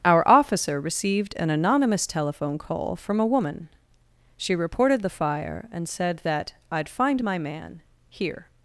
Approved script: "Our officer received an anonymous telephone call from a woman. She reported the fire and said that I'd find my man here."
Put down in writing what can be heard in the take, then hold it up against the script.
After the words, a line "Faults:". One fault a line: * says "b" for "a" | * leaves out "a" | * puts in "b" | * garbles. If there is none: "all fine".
"Our officer received an anonymous telephone call from a woman. She reported the fire and said that I'd find my man here."
Faults:
all fine